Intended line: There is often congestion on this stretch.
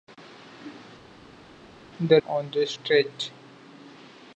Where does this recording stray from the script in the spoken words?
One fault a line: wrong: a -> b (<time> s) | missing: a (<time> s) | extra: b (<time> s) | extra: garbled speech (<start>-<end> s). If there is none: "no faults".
missing: is often congestion (2.2 s)